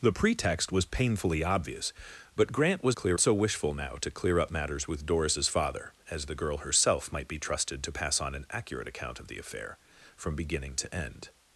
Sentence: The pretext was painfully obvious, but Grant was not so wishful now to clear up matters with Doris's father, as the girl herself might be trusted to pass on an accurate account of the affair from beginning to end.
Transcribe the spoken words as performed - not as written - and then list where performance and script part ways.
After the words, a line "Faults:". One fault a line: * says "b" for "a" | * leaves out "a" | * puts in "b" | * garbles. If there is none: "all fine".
The pretext was painfully obvious, but Grant was clear so wishful now to clear up matters with Doris's father, as the girl herself might be trusted to pass on an accurate account of the affair from beginning to end.
Faults:
* says "clear" for "not"